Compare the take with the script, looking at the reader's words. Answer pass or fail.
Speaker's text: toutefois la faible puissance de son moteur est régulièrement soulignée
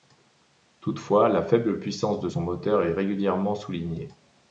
pass